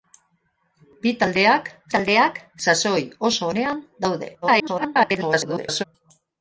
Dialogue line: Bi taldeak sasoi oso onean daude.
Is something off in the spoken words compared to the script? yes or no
yes